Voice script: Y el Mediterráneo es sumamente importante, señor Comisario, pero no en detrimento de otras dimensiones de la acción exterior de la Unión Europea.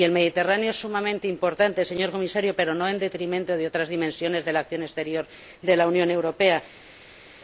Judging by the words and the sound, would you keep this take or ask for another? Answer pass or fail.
pass